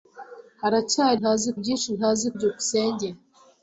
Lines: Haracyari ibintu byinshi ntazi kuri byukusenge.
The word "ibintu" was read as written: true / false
false